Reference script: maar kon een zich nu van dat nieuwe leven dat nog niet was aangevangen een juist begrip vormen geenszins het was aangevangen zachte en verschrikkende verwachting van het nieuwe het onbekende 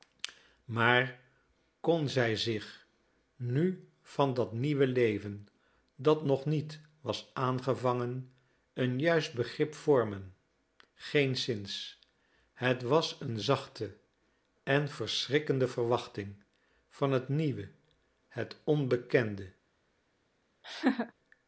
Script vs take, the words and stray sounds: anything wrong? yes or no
yes